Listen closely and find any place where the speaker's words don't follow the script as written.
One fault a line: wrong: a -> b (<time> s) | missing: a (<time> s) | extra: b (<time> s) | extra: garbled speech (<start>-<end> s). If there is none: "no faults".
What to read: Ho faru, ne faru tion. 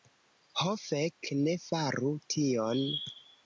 wrong: faru -> fek (0.8 s)